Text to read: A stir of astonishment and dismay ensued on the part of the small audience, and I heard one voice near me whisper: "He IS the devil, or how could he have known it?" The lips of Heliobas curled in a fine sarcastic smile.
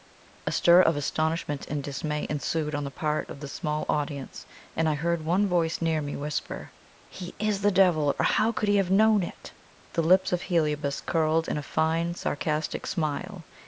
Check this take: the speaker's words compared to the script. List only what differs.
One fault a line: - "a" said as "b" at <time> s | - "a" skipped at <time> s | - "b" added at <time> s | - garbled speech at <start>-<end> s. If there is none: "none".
none